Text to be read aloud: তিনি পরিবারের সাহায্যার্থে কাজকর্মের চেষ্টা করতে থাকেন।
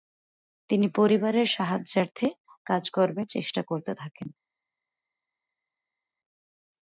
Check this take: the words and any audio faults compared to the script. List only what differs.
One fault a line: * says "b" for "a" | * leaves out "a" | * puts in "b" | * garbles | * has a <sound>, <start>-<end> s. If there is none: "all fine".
all fine